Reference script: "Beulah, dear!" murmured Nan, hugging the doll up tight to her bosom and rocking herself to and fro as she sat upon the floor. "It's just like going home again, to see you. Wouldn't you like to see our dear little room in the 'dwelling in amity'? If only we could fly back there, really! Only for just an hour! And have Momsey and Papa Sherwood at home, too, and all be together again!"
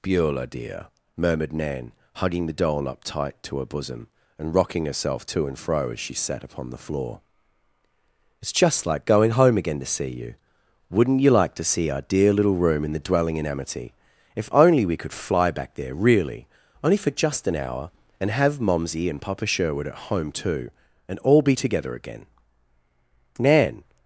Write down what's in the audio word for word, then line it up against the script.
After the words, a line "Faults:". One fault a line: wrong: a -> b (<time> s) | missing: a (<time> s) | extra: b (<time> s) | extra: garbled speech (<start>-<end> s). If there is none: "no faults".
"Beulah, dear!" murmured Nan, hugging the doll up tight to her bosom and rocking herself to and fro as she sat upon the floor. "It's just like going home again, to see you. Wouldn't you like to see our dear little room in the 'dwelling in amity'? If only we could fly back there, really! Only for just an hour! And have Momsey and Papa Sherwood at home, too, and all be together again!" Nan
Faults:
extra: Nan (23.4 s)